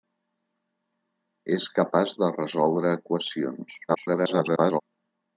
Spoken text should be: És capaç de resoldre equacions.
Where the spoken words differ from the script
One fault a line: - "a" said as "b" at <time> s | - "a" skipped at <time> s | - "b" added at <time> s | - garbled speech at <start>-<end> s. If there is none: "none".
- garbled speech at 3.9-4.8 s